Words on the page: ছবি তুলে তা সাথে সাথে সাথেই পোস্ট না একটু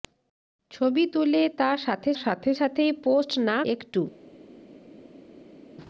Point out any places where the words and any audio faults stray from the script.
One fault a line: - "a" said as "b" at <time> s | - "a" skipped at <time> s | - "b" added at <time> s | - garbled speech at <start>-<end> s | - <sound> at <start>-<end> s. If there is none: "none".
none